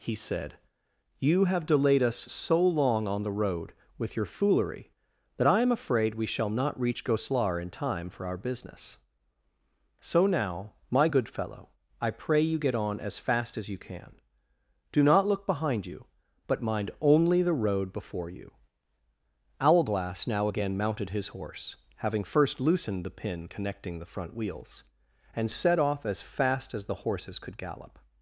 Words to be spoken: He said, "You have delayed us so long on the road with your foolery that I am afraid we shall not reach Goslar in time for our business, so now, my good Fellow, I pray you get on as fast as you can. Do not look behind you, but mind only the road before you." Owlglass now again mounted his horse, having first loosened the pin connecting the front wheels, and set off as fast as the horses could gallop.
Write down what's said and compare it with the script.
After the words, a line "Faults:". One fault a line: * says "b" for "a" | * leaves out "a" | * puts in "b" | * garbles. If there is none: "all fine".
He said, "You have delayed us so long on the road with your foolery that I am afraid we shall not reach Goslar in time for our business, so now, my good Fellow, I pray you get on as fast as you can. Do not look behind you, but mind only the road before you." Owlglass now again mounted his horse, having first loosened the pin connecting the front wheels, and set off as fast as the horses could gallop.
Faults:
all fine